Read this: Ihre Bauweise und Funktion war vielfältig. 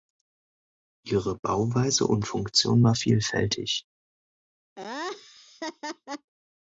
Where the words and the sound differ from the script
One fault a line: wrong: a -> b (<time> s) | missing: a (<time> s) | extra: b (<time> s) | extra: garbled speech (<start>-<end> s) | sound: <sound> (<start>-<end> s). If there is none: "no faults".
sound: laugh (4.8-6.3 s)